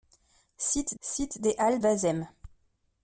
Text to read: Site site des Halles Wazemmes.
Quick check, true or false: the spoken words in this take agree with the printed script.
true